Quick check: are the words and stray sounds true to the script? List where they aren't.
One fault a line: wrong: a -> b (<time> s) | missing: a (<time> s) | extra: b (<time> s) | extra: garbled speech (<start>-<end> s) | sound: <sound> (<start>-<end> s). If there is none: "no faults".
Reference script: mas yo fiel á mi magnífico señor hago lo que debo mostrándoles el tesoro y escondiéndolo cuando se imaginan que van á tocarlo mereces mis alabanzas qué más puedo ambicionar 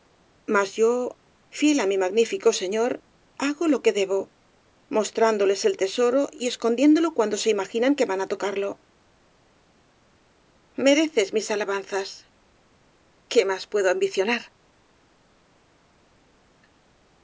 no faults